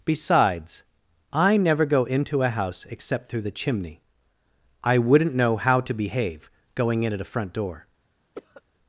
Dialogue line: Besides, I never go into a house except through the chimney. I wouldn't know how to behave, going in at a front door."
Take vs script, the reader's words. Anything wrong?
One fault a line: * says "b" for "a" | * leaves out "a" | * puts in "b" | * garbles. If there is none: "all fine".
all fine